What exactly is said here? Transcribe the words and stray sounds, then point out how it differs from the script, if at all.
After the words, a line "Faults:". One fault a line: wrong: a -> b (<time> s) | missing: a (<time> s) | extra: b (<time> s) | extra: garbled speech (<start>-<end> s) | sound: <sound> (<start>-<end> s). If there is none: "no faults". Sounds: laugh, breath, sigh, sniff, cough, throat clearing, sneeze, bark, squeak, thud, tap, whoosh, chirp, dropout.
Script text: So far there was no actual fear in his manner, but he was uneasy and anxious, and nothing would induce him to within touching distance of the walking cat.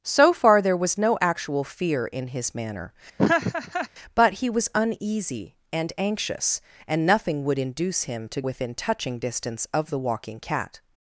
So far there was no actual fear in his manner, but he was uneasy and anxious, and nothing would induce him to within touching distance of the walking cat.
Faults:
sound: laugh (3.2-3.9 s)